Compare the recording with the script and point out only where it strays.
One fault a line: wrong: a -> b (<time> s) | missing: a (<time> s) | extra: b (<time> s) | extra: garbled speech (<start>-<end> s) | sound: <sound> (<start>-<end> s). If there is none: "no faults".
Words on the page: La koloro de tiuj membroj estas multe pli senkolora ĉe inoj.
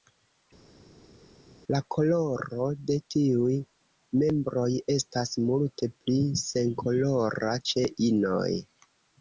no faults